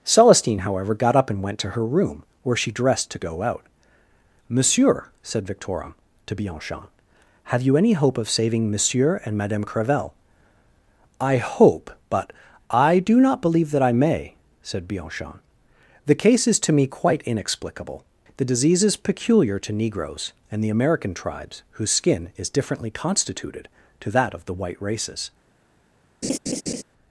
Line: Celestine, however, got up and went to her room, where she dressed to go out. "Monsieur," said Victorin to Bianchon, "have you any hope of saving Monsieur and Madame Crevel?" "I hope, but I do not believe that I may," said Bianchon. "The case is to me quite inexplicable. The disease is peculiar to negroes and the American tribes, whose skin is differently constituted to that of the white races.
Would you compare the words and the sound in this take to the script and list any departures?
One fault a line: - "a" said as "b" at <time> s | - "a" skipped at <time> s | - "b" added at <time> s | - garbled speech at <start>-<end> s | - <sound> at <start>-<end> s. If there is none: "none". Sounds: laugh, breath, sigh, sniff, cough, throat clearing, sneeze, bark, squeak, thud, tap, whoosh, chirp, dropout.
- laugh at 26.2-26.8 s